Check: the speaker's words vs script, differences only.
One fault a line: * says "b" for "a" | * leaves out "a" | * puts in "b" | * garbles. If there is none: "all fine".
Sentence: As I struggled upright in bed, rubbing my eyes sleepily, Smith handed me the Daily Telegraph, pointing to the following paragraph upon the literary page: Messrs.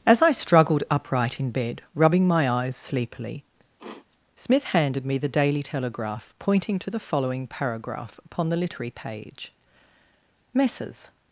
all fine